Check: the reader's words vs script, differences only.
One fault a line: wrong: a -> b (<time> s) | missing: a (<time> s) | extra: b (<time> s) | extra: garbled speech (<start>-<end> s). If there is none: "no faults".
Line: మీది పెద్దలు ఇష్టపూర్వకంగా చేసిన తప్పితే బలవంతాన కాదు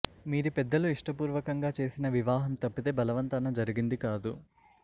extra: వివాహం (2.1 s)
extra: జరిగింది (3.6 s)